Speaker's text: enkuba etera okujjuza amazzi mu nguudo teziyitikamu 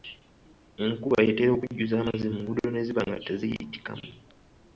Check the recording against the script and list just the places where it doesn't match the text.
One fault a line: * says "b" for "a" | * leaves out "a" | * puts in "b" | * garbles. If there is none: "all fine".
* puts in "ne ziba nga"